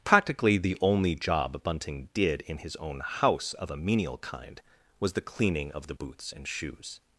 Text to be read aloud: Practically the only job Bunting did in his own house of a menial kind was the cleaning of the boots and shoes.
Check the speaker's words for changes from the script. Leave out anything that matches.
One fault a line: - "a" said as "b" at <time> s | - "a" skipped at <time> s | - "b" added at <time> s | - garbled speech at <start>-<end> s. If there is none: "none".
none